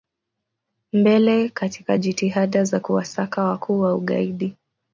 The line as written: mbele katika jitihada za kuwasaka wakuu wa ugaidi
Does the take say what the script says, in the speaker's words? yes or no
yes